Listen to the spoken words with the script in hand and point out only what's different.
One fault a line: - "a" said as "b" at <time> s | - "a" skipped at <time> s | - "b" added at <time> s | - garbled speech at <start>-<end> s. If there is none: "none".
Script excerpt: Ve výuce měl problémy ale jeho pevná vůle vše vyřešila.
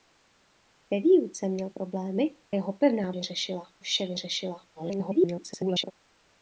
- "ale" skipped at 2.3 s
- "vůle" said as "vyřešila" at 3.1 s
- garbled speech at 4.7-5.9 s